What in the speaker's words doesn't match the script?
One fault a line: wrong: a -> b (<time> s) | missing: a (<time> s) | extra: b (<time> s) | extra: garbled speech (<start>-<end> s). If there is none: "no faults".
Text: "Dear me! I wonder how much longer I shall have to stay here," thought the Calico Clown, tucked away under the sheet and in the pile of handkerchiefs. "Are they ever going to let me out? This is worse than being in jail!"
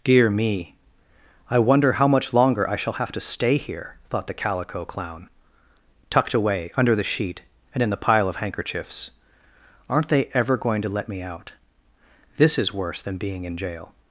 wrong: Are -> Aren't (9.9 s)